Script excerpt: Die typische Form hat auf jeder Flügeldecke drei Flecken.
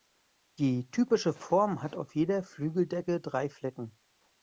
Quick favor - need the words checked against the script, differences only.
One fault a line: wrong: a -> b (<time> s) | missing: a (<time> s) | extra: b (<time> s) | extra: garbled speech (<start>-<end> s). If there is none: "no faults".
no faults